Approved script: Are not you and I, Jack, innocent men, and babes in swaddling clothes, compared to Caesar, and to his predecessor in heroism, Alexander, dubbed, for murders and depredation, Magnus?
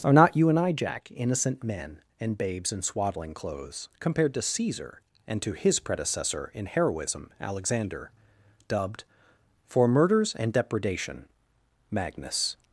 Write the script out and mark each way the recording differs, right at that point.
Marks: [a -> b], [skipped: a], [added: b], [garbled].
Are not you and I, Jack, innocent men, and babes in swaddling clothes, compared to Caesar, and to his predecessor in heroism, Alexander, dubbed, for murders and depredation, Magnus?